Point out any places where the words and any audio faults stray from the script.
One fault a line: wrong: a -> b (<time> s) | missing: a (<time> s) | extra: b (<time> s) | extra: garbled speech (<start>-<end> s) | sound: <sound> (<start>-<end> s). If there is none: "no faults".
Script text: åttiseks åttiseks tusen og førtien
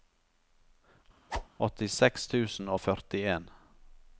sound: whoosh (1.3-1.5 s)
missing: åttiseks (2.3 s)